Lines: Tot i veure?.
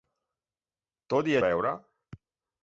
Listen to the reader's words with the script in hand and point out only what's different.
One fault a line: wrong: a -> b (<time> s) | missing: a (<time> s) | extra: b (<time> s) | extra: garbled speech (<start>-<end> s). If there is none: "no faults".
no faults